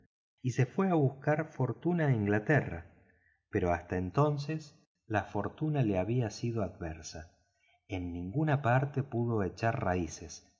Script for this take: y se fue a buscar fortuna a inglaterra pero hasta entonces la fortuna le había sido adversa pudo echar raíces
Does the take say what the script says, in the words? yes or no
no